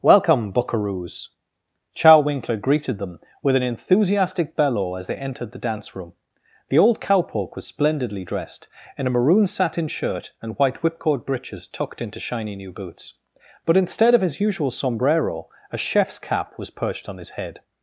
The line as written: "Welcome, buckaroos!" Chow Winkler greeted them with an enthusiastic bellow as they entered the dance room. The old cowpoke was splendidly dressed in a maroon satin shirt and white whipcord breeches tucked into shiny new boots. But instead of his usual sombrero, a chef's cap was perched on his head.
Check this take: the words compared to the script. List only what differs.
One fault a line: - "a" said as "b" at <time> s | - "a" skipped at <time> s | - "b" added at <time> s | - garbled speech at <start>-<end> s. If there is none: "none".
none